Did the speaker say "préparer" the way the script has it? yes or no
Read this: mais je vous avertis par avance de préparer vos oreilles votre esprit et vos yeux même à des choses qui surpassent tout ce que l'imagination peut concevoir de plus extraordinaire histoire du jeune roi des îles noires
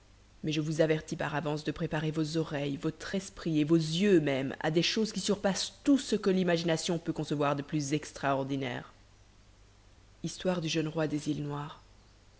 yes